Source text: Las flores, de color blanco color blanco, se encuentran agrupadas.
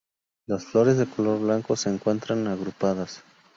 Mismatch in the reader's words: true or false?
true